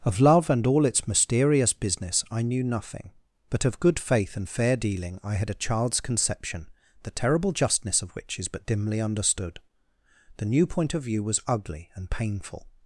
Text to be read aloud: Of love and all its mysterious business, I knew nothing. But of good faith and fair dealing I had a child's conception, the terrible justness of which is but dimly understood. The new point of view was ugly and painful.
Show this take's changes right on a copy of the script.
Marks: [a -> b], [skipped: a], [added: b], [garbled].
Of love and all its mysterious business, I knew nothing. But of good faith and fair dealing I had a child's conception, the terrible justness of which is but dimly understood. The new point of view was ugly and painful.